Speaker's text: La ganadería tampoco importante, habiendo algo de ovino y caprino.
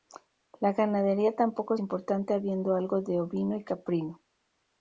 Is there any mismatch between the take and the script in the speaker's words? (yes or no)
no